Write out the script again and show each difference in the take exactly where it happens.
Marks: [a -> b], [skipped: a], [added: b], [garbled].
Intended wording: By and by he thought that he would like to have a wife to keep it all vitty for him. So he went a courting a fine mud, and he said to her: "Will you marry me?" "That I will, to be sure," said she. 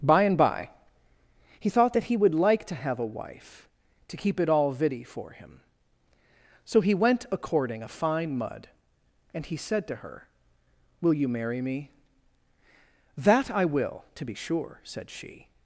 By and by he thought that he would like to have a wife to keep it all vitty for him. So he went a courting a fine mud, and he said to her: "Will you marry me?" "That I will, to be sure," said she.